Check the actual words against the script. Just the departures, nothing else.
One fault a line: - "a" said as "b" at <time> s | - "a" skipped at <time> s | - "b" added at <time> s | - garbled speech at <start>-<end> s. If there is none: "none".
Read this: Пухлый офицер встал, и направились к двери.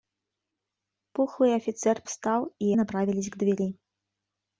none